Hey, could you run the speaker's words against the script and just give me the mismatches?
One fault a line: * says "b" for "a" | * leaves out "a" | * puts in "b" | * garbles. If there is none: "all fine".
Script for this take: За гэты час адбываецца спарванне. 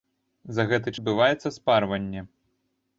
* leaves out "час"